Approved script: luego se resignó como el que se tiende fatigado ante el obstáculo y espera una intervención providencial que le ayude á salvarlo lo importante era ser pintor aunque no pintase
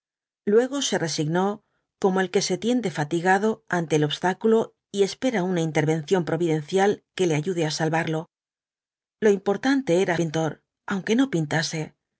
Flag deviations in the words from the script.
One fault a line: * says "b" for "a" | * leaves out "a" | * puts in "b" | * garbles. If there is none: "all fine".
* leaves out "ser"